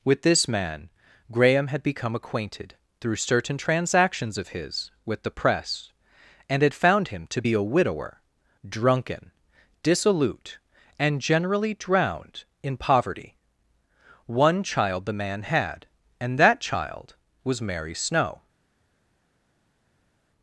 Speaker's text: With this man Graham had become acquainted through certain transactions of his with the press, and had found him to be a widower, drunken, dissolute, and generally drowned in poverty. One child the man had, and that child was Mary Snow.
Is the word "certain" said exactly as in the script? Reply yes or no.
yes